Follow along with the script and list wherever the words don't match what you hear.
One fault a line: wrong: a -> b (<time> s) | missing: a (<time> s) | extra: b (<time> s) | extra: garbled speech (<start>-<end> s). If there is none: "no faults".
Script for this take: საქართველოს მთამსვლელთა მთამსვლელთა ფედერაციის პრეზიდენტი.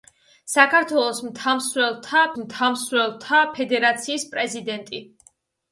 no faults